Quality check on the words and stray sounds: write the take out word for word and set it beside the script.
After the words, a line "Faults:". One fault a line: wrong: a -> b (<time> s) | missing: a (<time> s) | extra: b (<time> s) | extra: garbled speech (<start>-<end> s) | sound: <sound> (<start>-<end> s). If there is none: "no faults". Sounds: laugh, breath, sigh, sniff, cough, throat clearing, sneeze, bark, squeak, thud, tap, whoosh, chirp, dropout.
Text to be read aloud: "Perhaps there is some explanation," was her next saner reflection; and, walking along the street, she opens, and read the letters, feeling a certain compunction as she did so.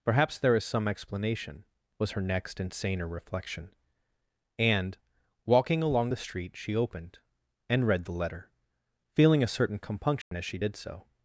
"Perhaps there is some explanation," was her next and saner reflection; and, walking along the street, she opened, and read the letter, feeling a certain compunction as she did so.
Faults:
extra: and (2.6 s)
wrong: opens -> opened (6.7 s)
wrong: letters -> letter (8.1 s)
sound: dropout (10.2-10.3 s)